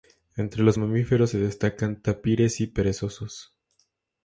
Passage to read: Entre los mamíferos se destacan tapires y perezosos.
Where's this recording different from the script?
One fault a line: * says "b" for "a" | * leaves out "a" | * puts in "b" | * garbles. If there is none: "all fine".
all fine